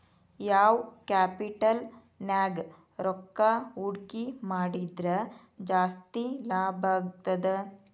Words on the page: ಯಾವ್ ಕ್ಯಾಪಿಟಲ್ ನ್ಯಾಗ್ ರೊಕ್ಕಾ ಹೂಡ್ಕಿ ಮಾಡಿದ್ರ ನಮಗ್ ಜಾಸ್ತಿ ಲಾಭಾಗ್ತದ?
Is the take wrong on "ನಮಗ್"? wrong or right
wrong